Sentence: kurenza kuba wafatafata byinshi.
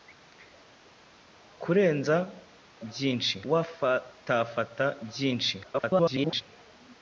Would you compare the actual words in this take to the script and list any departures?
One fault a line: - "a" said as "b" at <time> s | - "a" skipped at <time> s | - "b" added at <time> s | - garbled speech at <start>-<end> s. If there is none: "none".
- "kuba" said as "byinshi" at 2.9 s
- garbled speech at 5.6-6.4 s